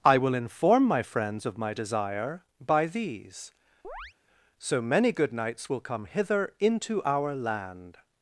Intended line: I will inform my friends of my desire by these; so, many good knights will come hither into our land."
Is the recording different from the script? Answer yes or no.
no